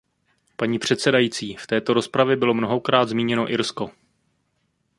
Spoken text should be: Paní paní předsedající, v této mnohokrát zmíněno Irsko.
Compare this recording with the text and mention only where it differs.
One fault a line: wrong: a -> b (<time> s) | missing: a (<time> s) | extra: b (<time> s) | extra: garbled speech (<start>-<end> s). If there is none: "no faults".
missing: paní (0.8 s)
extra: rozpravě bylo (1.9 s)